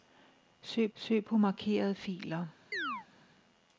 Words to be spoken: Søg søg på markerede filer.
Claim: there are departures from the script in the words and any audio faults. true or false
true